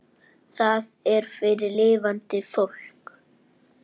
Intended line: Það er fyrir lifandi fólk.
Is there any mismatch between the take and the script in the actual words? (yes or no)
no